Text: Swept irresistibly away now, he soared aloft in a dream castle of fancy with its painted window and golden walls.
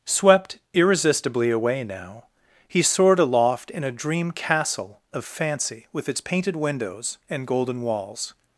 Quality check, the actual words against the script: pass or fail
fail